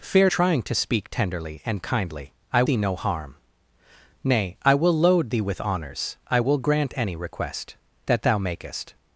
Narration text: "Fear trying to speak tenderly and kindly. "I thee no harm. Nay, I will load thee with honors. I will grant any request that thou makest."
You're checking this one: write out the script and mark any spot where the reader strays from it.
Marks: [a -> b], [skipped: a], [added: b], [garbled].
"Fear trying to speak tenderly and kindly. "I thee no harm. Nay, I will load thee with honors. I will grant any request that thou makest."